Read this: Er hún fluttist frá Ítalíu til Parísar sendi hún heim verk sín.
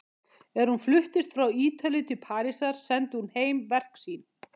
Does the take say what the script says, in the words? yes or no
yes